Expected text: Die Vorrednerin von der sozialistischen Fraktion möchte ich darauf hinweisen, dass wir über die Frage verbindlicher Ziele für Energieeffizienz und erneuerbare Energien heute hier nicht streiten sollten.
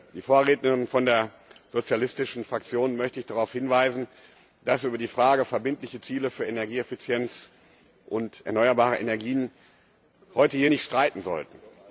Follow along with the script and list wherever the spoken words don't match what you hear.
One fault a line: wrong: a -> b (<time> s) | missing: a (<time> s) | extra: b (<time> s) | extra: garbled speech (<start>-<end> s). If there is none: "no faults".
no faults